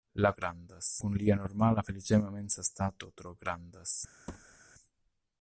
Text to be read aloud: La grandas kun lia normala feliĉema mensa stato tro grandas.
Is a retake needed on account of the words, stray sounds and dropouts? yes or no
yes